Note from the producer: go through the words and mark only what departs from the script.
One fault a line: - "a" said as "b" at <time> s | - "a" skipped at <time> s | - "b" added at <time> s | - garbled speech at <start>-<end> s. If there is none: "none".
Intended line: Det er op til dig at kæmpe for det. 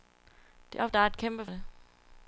- "til" skipped at 0.9 s
- "for" skipped at 1.5 s